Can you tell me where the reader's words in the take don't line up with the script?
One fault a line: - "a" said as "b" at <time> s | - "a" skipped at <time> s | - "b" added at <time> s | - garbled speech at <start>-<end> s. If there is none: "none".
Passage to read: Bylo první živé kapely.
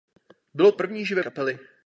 none